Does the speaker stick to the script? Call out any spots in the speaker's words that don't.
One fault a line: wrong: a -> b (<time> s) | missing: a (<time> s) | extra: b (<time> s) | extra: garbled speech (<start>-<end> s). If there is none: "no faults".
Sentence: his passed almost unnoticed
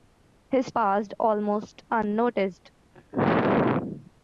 no faults